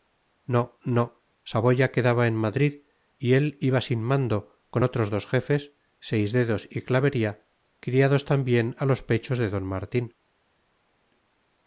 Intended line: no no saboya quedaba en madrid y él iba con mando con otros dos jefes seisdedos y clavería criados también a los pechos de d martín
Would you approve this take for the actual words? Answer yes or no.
no